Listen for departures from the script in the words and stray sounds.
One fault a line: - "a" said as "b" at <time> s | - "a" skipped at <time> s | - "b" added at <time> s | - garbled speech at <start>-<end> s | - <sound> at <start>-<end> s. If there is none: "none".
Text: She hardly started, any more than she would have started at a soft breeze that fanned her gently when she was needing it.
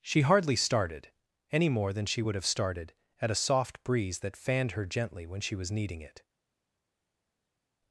none